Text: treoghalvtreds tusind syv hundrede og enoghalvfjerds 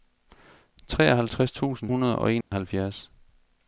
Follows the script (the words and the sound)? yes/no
no